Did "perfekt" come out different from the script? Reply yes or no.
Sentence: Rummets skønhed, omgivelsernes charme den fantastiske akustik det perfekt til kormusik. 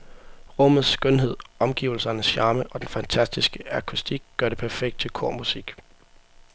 no